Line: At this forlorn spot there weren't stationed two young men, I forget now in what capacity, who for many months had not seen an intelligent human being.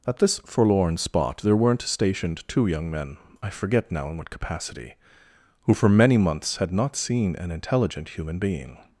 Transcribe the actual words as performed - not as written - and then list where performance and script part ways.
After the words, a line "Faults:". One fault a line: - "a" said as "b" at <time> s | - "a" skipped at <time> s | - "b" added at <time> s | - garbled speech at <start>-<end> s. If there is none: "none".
At this forlorn spot there weren't stationed two young men, I forget now in what capacity, who for many months had not seen an intelligent human being.
Faults:
none